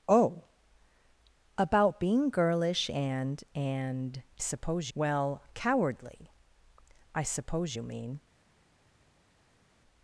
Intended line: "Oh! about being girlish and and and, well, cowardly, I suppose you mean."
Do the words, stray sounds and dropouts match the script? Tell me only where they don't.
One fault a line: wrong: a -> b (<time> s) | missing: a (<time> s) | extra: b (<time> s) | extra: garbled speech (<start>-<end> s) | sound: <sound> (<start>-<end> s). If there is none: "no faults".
wrong: and -> suppose (4.4 s)